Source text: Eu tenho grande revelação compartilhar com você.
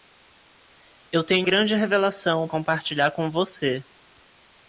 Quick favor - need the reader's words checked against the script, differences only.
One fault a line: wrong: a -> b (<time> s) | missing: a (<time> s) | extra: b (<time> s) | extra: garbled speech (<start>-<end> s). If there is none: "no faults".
no faults